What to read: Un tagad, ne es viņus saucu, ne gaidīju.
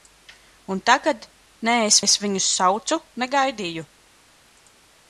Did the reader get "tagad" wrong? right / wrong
right